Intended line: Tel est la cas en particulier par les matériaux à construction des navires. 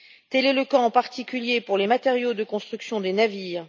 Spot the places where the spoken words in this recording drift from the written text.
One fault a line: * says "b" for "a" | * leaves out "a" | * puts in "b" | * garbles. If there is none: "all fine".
* says "le" for "la"
* says "pour" for "par"
* says "de" for "à"